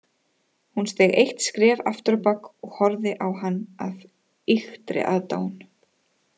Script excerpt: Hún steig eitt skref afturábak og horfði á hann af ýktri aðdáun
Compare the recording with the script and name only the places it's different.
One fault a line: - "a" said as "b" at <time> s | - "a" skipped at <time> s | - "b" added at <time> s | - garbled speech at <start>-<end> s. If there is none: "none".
none